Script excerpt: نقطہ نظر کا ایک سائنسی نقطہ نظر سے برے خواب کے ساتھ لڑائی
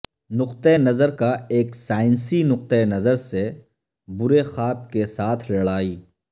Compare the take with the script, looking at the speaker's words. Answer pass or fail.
pass